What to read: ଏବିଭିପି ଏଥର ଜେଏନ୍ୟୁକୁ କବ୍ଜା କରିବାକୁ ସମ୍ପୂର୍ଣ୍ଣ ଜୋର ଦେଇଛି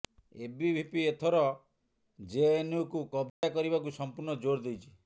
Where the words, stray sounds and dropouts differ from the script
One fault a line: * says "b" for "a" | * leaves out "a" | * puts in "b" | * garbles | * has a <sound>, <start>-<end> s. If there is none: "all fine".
* has a dropout, 3.3-3.4 s